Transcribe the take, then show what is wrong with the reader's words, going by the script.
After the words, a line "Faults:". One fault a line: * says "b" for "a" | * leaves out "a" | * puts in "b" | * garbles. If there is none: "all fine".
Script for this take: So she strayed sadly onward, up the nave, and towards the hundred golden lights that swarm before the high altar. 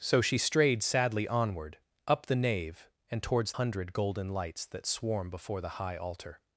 So she strayed sadly onward, up the nave, and towards hundred golden lights that swarm before the high altar.
Faults:
* leaves out "the"